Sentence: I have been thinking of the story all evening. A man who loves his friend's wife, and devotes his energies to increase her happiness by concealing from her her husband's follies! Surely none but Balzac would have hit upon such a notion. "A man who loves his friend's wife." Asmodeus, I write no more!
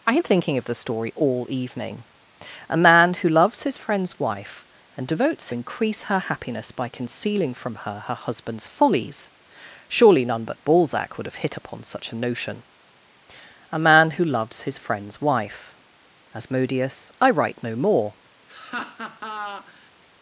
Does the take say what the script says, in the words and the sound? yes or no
no